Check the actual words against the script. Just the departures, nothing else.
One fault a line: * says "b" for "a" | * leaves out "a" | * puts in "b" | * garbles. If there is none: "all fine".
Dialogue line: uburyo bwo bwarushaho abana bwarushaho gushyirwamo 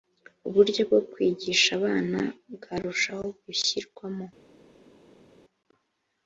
* says "kwigisha" for "bwarushaho"